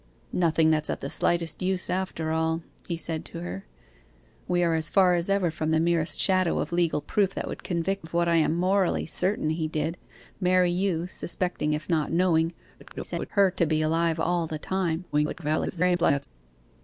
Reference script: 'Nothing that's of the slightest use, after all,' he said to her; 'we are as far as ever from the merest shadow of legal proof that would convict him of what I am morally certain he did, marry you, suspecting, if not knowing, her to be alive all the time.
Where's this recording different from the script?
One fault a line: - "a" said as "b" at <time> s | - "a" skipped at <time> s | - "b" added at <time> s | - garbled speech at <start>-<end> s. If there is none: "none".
- "him" skipped at 8.1 s
- garbled speech at 12.8-13.3 s
- garbled speech at 15.1-16.3 s